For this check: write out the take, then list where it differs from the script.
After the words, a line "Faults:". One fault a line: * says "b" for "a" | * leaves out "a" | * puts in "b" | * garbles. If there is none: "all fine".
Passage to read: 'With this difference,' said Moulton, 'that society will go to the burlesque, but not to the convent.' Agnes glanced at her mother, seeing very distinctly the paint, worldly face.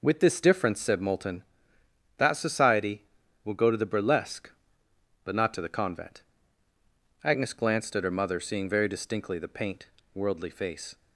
'With this difference,' said Moulton, 'that society will go to the burlesque, but not to the convent.' Agnes glanced at her mother, seeing very distinctly the paint, worldly face.
Faults:
all fine